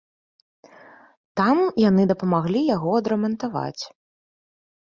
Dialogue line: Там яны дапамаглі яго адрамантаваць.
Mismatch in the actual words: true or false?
false